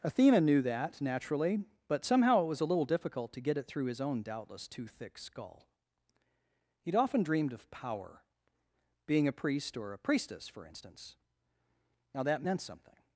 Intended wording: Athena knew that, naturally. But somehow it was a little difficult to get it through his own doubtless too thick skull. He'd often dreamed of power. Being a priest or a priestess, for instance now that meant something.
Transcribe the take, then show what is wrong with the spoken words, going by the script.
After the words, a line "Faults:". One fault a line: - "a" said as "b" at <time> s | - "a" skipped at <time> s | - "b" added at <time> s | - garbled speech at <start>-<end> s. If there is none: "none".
Athena knew that, naturally. But somehow it was a little difficult to get it through his own doubtless too thick skull. He'd often dreamed of power. Being a priest or a priestess, for instance now that meant something.
Faults:
none